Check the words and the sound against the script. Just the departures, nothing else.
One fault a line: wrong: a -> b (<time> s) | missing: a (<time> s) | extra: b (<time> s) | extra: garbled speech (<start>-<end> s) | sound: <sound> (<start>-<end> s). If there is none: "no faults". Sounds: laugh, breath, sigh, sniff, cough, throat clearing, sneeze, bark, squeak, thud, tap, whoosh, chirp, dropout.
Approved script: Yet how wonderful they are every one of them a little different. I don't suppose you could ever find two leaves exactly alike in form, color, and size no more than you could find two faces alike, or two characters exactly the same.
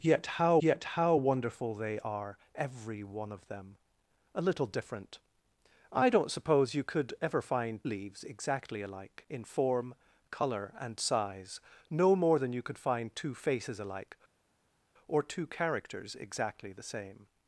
extra: yet how (0.6 s)
missing: two (7.8 s)